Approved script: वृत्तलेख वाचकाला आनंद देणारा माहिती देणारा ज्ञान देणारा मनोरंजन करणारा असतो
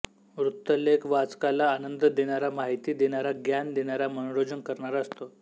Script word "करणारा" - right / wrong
right